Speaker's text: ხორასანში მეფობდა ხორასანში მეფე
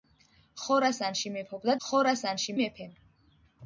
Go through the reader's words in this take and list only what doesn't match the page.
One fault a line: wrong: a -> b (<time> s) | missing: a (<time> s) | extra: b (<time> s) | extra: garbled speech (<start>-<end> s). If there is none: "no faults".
no faults